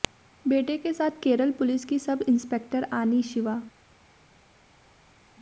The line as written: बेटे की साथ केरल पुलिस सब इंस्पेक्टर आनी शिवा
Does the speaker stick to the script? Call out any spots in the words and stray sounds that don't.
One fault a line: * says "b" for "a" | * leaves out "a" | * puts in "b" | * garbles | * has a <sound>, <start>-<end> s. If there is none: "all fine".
* says "के" for "की"
* puts in "की"